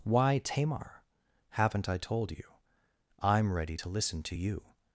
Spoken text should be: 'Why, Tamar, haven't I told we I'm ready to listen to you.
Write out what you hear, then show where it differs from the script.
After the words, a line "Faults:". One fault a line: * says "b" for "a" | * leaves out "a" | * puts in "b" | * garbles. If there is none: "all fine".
'Why, Tamar, haven't I told you I'm ready to listen to you.
Faults:
* says "you" for "we"